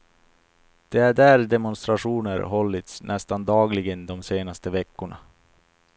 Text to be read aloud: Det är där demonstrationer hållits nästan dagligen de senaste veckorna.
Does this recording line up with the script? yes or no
yes